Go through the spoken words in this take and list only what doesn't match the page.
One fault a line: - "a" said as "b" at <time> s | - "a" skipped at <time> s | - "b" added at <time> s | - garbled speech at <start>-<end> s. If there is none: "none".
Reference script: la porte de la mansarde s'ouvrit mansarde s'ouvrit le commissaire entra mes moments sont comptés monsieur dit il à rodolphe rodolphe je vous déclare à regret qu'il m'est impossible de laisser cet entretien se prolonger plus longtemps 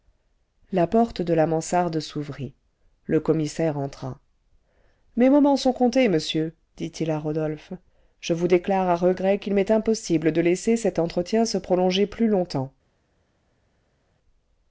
- "mansarde s'ouvrit" skipped at 2.5 s
- "rodolphe" skipped at 7.7 s